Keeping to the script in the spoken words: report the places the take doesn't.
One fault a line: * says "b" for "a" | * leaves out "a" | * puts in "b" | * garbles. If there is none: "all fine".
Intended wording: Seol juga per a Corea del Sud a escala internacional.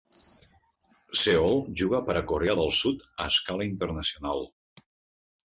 all fine